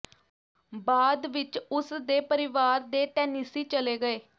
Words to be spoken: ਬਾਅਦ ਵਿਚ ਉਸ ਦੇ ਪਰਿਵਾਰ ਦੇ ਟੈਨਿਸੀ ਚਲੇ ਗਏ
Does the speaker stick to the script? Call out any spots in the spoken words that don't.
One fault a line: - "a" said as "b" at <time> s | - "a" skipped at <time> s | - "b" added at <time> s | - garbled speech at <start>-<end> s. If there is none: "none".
none